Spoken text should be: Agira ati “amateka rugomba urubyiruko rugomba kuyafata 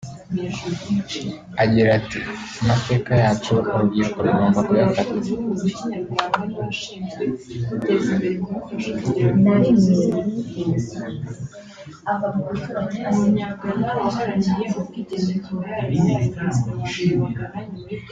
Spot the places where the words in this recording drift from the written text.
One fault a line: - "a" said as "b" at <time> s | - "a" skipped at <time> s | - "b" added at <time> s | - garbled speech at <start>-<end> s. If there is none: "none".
- "rugomba" said as "yacu" at 3.2 s